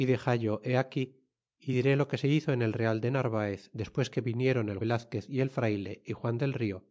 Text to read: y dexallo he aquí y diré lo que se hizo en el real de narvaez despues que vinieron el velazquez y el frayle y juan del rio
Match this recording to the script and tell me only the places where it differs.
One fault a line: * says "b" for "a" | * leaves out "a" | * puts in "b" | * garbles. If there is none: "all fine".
all fine